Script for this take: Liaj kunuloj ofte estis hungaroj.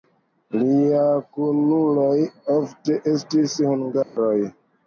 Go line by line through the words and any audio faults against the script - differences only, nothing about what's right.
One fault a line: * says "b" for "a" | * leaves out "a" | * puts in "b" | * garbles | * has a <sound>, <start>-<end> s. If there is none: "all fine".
* has a dropout, 4.0-4.2 s